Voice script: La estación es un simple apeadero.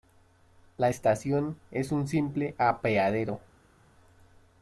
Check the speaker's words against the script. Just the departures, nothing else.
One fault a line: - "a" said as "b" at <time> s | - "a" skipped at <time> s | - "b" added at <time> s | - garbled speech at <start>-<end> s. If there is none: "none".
none